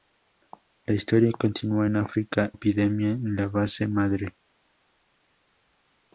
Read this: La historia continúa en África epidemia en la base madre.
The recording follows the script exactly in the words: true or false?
true